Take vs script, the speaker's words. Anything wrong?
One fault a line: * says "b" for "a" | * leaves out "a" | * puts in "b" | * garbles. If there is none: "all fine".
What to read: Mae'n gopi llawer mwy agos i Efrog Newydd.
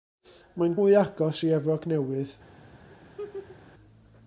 * leaves out "gopi llawer"